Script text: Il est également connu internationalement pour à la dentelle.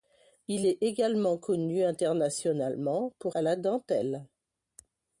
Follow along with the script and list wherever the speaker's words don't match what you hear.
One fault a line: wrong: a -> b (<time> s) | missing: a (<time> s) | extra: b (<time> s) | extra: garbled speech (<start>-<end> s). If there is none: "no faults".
no faults